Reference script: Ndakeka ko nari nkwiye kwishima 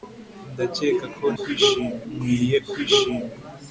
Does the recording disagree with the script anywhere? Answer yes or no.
yes